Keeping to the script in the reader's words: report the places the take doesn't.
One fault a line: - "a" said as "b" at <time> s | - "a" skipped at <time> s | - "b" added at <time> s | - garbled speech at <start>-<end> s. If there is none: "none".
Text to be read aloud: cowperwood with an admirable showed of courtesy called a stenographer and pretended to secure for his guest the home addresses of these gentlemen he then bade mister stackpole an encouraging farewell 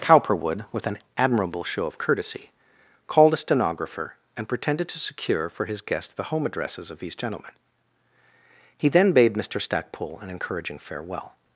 - "showed" said as "show" at 1.6 s